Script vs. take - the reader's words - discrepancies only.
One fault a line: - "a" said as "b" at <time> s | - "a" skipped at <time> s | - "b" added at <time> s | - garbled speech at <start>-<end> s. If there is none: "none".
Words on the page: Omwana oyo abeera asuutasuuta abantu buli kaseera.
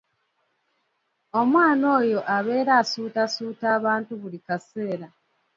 none